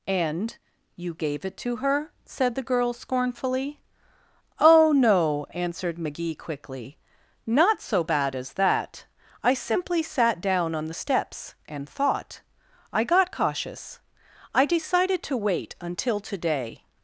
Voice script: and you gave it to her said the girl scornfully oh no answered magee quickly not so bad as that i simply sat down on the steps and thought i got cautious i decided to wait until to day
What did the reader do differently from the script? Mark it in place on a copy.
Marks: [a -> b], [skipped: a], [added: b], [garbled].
and you gave it to her said the girl scornfully oh no answered magee quickly not so bad as that i simply sat down on the steps and thought i got cautious i decided to wait until to day